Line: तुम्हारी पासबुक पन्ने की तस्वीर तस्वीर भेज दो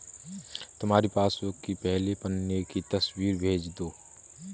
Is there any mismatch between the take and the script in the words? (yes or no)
yes